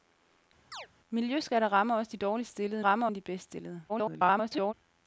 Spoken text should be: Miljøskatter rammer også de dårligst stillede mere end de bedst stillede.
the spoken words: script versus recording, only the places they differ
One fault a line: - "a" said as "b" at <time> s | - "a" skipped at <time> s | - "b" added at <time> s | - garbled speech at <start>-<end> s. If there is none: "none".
- "mere" said as "rammer" at 2.8 s
- garbled speech at 3.9-4.7 s